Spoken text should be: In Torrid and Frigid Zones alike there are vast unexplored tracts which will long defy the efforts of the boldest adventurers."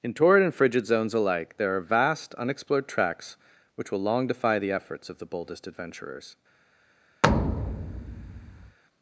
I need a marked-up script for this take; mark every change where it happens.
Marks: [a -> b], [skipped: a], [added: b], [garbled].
In Torrid and Frigid Zones alike there are vast unexplored tracts which will long defy the efforts of the boldest adventurers."